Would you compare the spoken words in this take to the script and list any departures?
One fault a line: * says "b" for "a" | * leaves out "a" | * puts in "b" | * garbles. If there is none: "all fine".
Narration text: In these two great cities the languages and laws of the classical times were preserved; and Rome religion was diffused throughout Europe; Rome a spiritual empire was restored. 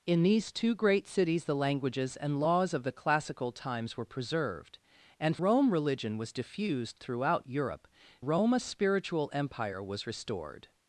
all fine